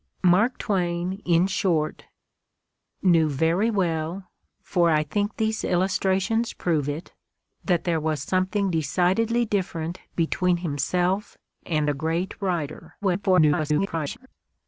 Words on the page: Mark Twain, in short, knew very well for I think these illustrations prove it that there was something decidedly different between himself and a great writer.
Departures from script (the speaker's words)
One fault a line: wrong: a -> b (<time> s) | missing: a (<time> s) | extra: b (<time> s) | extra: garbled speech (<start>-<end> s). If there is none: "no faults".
extra: garbled speech (13.0-14.3 s)